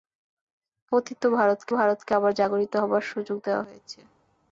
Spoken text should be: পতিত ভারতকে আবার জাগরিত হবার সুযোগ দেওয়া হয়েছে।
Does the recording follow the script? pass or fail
fail